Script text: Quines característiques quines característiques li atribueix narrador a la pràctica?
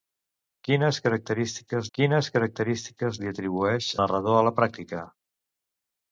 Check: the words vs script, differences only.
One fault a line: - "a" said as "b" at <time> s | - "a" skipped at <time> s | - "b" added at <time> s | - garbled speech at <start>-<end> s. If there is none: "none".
none